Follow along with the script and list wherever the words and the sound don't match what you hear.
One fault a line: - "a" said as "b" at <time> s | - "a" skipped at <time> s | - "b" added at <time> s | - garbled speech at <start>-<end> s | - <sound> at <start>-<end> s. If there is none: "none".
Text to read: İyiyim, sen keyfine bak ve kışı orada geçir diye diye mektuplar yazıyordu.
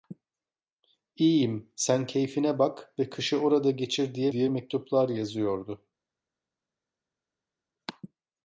none